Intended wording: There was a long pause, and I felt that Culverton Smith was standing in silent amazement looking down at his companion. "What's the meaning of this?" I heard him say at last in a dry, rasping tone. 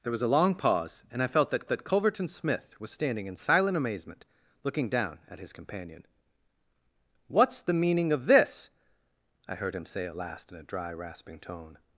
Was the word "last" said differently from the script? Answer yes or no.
no